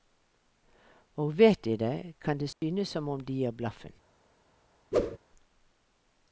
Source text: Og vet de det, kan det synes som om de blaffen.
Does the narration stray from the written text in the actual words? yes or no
yes